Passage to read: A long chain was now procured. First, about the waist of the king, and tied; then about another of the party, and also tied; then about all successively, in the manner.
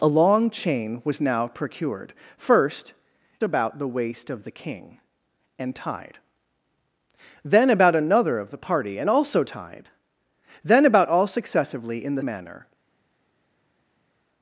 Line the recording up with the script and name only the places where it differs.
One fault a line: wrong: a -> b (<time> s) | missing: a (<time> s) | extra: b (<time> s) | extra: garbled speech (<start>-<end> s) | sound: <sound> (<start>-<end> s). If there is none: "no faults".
no faults